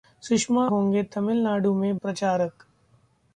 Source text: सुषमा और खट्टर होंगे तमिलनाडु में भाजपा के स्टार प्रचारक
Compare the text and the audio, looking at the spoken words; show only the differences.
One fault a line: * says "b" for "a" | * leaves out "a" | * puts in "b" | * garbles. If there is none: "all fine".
* leaves out "और खट्टर"
* leaves out "भाजपा के स्टार"